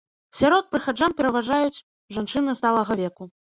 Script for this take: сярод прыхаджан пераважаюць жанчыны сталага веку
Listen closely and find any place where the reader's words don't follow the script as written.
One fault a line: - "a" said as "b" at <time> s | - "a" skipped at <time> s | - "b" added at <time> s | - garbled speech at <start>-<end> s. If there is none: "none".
none